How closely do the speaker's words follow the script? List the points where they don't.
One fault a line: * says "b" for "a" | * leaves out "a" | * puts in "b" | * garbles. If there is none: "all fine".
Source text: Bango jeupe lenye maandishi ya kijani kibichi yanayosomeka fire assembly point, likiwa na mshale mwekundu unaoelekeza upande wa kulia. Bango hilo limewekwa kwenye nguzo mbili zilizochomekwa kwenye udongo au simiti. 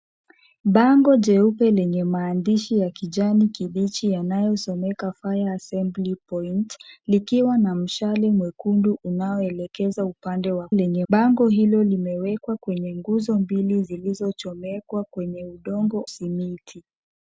* says "lenye" for "kulia"
* leaves out "au"